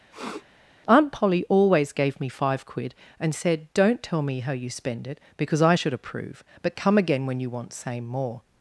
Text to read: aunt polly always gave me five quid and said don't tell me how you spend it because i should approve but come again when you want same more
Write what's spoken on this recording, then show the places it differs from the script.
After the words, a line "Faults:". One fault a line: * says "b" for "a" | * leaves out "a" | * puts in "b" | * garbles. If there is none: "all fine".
aunt polly always gave me five quid and said don't tell me how you spend it because i should approve but come again when you want same more
Faults:
all fine